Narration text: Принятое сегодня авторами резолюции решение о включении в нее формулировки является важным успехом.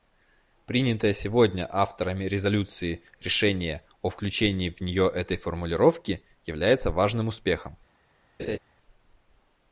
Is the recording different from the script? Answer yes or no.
yes